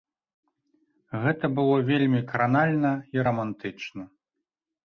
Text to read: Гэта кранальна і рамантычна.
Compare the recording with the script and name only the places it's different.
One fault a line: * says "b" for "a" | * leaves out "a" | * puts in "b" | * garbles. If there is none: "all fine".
* puts in "было вельмі"